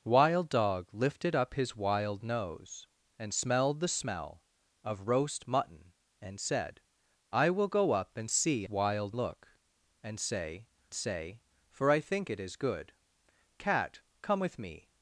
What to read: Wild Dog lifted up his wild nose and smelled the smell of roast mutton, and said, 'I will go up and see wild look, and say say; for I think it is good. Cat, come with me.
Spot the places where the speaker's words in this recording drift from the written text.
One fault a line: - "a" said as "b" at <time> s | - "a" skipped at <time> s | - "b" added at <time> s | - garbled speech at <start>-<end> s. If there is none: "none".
none